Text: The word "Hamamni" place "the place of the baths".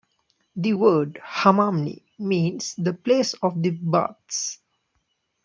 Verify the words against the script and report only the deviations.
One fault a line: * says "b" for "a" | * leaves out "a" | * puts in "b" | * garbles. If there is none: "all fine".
* says "means" for "place"